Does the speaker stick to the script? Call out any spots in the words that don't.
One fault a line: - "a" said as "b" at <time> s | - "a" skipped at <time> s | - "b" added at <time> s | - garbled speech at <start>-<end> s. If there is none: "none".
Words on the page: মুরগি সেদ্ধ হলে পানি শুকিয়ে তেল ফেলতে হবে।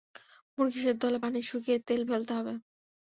none